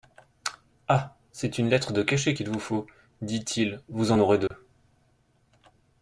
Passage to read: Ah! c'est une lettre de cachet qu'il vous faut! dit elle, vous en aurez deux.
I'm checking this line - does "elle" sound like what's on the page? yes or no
no